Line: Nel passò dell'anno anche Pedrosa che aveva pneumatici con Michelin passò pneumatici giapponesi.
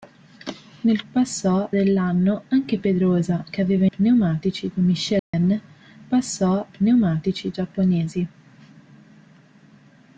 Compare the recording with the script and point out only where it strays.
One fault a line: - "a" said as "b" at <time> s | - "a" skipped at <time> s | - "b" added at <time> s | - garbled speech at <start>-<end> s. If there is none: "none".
none